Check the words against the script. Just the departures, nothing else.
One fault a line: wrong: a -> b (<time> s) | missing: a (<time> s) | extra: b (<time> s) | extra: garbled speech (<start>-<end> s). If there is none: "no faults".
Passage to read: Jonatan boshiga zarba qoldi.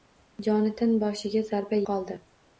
no faults